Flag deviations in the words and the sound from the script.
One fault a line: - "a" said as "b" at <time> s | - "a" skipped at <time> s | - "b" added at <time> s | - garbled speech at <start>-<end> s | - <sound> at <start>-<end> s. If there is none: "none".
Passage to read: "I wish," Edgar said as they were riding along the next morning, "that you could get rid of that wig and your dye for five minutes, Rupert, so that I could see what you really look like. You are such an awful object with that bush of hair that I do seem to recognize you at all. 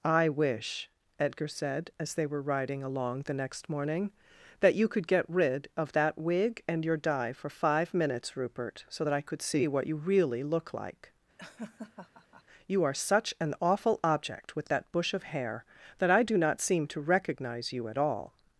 - laugh at 11.4-12.4 s
- "not" added at 16.4 s